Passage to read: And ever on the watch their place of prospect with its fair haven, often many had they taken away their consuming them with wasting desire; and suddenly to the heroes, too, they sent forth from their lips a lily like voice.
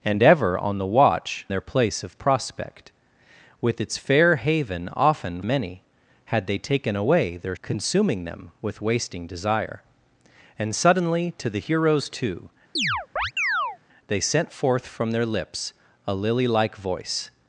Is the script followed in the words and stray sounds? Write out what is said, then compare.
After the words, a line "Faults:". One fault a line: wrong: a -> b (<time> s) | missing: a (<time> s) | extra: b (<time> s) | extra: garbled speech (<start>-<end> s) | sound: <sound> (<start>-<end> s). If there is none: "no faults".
And ever on the watch their place of prospect with its fair haven, often many had they taken away their consuming them with wasting desire; and suddenly to the heroes, too, they sent forth from their lips a lily like voice.
Faults:
sound: chirp (12.8-13.8 s)